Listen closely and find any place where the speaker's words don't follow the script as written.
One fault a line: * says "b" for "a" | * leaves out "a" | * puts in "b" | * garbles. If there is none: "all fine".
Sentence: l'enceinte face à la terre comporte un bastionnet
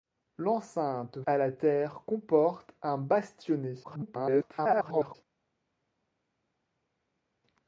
* leaves out "face"
* garbles